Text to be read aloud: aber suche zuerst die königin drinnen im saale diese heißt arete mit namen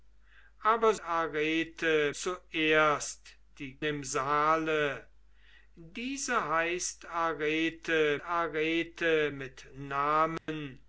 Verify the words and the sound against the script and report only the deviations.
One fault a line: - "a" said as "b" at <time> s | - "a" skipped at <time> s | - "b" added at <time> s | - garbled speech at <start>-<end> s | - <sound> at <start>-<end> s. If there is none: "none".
- "suche" said as "arete" at 1.0 s
- "königin drinnen" skipped at 3.8 s
- "arete" added at 8.2 s
- dropout at 10.4-10.5 s